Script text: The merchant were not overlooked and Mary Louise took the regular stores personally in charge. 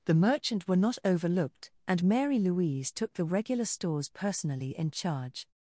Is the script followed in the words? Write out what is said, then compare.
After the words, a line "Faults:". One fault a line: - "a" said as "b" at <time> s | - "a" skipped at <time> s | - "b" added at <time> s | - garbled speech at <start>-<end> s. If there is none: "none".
The merchant were not overlooked and Mary Louise took the regular stores personally in charge.
Faults:
none